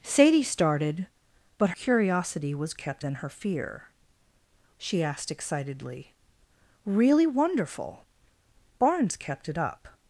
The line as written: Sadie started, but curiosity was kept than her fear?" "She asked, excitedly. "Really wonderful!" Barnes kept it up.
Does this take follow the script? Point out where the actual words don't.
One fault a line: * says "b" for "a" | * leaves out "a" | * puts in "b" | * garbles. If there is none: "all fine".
all fine